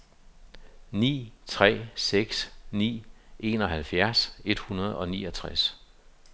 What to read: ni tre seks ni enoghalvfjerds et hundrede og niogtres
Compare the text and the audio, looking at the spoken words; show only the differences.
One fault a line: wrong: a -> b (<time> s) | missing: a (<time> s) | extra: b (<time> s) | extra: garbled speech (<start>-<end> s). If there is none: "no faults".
no faults